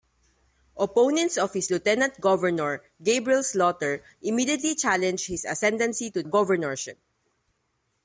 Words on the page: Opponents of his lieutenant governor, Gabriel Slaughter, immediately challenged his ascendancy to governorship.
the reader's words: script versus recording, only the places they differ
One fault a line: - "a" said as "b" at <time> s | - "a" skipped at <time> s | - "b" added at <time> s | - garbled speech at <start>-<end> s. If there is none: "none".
none